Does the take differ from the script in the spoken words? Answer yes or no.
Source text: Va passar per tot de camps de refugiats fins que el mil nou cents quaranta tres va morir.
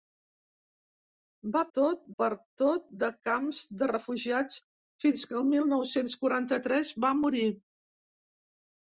yes